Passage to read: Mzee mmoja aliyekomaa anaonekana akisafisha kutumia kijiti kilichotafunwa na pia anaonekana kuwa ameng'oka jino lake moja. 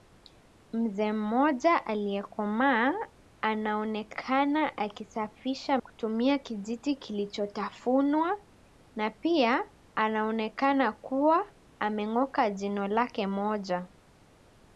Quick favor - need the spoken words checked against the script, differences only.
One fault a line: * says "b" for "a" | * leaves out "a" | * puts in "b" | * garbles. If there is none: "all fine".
all fine